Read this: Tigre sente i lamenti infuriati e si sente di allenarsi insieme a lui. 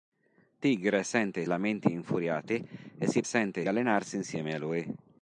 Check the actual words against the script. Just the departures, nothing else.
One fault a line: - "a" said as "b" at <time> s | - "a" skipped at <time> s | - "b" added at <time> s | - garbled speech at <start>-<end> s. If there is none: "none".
none